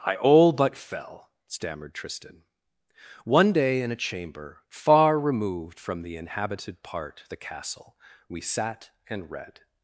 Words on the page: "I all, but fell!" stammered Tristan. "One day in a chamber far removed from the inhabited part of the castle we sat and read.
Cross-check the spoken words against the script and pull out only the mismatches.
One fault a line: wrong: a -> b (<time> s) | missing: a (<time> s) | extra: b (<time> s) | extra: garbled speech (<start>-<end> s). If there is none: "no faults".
missing: of (7.2 s)